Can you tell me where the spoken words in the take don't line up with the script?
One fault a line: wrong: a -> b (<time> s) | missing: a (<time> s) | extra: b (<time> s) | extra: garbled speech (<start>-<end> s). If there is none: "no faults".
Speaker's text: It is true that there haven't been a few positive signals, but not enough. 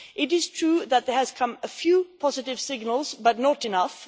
wrong: haven't -> have (1.1 s)